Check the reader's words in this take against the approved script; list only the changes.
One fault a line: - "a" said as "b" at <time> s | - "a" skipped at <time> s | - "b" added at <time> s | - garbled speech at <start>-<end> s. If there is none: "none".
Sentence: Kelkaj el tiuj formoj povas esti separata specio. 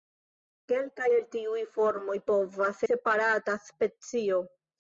- "esti" skipped at 2.8 s